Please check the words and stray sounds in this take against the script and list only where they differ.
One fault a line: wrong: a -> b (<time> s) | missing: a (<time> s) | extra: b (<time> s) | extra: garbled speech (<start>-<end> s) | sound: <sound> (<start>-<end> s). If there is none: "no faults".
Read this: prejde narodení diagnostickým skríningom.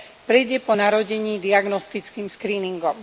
extra: po (0.6 s)